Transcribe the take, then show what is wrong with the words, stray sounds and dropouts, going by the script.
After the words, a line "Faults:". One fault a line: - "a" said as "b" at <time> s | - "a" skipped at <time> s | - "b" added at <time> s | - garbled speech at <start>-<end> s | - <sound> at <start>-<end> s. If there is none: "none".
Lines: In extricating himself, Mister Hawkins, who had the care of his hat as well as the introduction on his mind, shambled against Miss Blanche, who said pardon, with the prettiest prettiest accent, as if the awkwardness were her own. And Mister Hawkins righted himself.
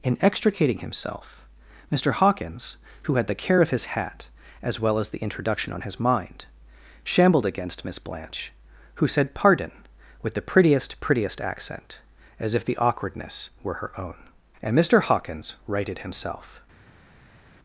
In extricating himself, Mister Hawkins, who had the care of his hat as well as the introduction on his mind, shambled against Miss Blanche, who said pardon, with the prettiest prettiest accent, as if the awkwardness were her own. And Mister Hawkins righted himself.
Faults:
none